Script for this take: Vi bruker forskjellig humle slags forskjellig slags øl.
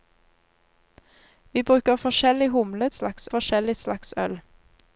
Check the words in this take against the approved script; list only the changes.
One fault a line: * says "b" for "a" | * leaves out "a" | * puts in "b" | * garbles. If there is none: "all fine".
all fine